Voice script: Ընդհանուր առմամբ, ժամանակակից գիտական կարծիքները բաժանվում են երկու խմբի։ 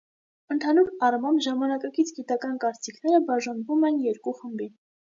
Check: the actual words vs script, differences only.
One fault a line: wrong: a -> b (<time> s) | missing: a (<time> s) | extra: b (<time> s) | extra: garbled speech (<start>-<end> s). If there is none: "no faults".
no faults